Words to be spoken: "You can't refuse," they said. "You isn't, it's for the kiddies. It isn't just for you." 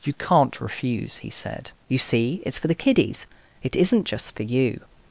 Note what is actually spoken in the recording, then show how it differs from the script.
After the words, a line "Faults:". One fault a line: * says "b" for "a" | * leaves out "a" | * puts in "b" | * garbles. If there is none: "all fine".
"You can't refuse," he said. "You see, it's for the kiddies. It isn't just for you."
Faults:
* says "he" for "they"
* says "see" for "isn't"